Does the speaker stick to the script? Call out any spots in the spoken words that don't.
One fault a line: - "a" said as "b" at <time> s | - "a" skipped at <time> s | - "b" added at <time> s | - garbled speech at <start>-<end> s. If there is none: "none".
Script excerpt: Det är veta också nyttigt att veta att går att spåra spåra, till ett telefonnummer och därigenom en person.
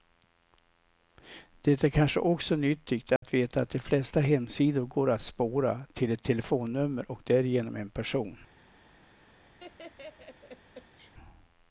- "veta" said as "kanske" at 1.9 s
- "de flesta hemsidor" added at 3.7 s
- "spåra" skipped at 5.8 s